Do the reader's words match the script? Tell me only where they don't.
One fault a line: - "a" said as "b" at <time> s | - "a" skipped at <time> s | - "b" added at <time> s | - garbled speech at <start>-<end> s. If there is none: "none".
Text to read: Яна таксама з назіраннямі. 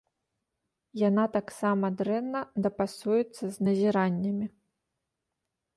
- "дрэнна дапасуецца" added at 2.0 s